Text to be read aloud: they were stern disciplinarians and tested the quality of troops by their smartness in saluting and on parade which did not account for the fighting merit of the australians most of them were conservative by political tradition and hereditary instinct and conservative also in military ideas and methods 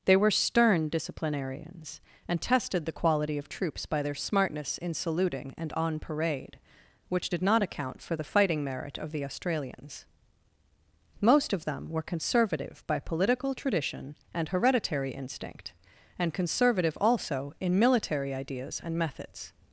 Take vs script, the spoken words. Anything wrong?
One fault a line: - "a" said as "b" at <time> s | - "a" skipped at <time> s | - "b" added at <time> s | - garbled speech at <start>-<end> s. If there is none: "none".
none